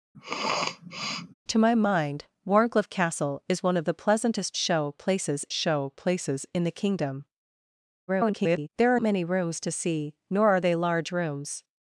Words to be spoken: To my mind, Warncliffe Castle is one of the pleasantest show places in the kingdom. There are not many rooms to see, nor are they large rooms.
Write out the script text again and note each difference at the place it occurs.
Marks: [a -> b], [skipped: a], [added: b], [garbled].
To my mind, Warncliffe Castle is one of the pleasantest show places [added: show places] in the kingdom. [garbled] There are [skipped: not] many rooms to see, nor are they large rooms.